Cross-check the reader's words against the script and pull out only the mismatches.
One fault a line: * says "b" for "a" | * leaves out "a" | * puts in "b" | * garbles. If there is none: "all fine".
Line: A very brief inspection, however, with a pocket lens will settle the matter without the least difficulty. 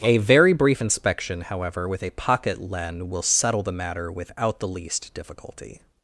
* says "len" for "lens"